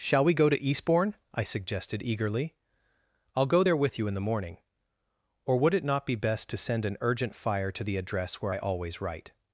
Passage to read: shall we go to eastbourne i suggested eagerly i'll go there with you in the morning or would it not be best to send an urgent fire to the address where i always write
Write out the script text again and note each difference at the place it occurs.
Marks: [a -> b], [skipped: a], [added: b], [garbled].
shall we go to eastbourne i suggested eagerly i'll go there with you in the morning or would it not be best to send an urgent fire to the address where i always write